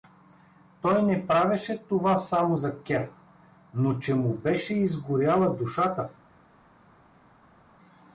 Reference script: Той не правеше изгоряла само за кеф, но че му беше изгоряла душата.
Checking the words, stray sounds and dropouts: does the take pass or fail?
fail